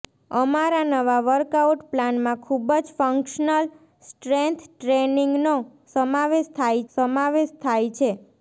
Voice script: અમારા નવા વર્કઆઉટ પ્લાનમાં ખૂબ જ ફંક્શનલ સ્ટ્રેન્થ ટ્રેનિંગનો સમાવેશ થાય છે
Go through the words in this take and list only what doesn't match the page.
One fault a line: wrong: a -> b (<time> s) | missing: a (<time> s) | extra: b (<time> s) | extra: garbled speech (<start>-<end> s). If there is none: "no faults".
extra: સમાવેશ થાય (6.9 s)